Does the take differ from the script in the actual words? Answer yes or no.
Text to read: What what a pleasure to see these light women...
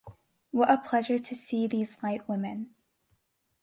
yes